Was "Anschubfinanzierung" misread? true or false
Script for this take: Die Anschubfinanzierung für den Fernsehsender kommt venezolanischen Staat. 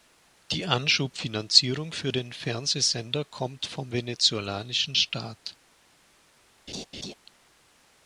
false